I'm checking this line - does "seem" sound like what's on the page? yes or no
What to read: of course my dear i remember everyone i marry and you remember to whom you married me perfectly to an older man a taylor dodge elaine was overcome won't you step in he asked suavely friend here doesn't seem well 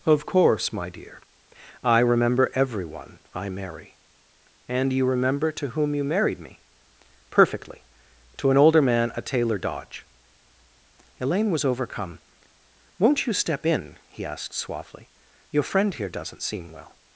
yes